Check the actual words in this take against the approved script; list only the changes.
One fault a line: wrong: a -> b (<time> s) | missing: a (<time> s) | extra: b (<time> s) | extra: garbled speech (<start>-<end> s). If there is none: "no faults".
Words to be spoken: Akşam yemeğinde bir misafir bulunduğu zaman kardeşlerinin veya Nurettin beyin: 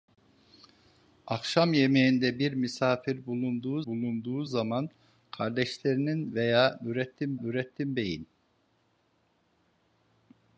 extra: bulunduğu (3.8 s)
extra: Nurettin (7.4 s)